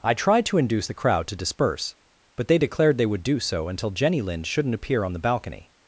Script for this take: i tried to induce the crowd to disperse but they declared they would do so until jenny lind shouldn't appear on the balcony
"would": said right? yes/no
yes